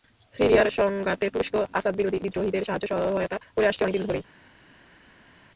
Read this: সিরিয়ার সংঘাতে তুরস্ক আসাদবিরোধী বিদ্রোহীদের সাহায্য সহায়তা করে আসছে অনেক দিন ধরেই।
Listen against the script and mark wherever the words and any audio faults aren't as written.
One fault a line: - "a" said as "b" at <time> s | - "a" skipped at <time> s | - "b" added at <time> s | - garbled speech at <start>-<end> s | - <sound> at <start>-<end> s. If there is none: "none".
none